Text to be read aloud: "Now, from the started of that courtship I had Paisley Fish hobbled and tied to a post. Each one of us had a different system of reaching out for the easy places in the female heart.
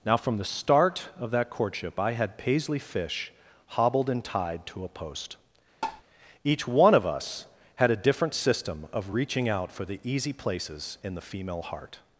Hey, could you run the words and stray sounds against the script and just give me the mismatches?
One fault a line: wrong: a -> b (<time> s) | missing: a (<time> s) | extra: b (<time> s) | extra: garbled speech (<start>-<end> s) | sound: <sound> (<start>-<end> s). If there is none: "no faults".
wrong: started -> start (0.5 s)
sound: tap (5.8-6.0 s)